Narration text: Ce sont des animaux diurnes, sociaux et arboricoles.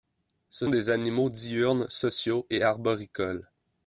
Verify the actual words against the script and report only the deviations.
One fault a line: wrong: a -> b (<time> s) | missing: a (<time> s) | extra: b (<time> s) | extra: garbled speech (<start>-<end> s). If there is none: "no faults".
missing: sont (0.7 s)